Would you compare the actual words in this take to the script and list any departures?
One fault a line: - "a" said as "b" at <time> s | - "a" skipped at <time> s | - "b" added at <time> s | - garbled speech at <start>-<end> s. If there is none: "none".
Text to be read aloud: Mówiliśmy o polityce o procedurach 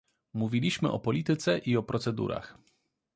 - "i" added at 1.6 s